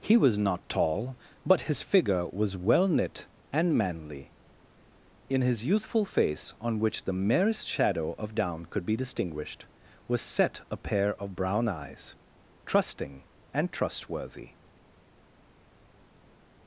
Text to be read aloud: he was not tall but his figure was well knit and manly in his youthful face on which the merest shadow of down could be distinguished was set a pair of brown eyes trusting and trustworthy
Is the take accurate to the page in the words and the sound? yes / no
yes